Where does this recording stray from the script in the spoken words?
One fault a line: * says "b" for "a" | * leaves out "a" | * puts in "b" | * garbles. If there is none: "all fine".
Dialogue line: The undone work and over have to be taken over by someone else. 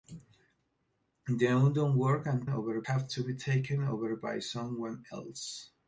all fine